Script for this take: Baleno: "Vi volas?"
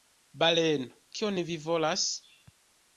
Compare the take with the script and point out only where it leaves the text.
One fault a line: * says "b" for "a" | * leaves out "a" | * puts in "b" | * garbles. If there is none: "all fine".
* puts in "Kion"